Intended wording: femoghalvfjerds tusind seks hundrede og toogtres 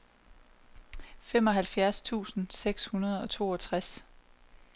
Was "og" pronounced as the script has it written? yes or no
yes